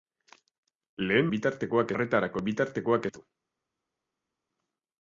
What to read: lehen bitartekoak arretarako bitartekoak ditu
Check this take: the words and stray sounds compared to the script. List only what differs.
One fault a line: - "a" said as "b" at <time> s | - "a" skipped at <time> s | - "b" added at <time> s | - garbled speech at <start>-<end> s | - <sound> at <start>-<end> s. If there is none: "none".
none